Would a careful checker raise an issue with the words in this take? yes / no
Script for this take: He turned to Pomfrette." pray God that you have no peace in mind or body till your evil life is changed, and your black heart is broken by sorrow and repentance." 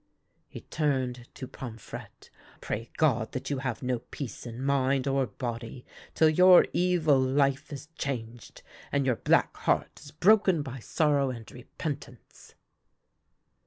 no